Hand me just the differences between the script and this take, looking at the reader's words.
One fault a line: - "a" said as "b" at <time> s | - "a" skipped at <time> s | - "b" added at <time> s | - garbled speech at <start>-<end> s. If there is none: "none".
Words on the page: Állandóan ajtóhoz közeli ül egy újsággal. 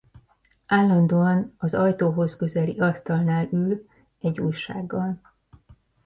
- "az" added at 1.6 s
- "asztalnál" added at 2.8 s